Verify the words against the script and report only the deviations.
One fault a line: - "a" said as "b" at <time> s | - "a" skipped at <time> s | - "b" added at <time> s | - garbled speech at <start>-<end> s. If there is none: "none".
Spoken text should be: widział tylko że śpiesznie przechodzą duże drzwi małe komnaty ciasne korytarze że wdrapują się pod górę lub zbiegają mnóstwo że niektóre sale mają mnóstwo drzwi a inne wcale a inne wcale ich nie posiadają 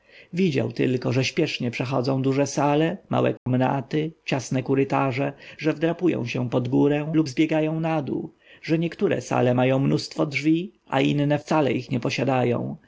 - "drzwi" said as "sale" at 2.5 s
- "mnóstwo" said as "nadół" at 7.8 s
- "a inne wcale" skipped at 11.7 s